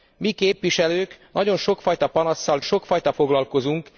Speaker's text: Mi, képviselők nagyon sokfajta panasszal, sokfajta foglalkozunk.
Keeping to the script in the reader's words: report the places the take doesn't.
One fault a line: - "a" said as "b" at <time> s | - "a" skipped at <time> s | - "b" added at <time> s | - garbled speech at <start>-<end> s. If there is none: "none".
none